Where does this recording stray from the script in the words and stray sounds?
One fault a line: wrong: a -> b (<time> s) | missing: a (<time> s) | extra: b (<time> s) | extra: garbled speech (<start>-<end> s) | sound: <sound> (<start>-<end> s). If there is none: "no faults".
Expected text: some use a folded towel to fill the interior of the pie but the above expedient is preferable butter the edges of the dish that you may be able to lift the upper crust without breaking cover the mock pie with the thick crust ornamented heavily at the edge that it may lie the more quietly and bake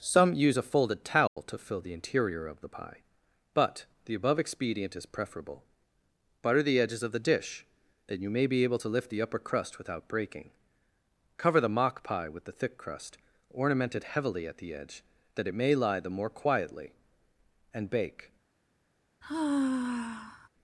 sound: dropout (1.3-1.4 s)
wrong: that -> then (8.1 s)
sound: sigh (19.2-20.5 s)